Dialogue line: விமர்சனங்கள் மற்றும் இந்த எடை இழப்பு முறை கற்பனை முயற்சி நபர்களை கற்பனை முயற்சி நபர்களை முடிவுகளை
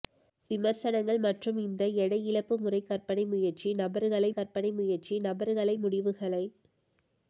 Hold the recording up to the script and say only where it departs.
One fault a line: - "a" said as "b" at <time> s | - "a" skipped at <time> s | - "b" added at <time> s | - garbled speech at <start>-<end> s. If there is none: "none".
none